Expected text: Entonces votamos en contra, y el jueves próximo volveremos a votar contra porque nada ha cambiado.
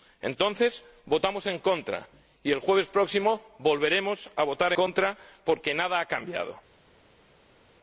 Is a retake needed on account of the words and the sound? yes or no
no